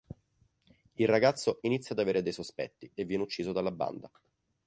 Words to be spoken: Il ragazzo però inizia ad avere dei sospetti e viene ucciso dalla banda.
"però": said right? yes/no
no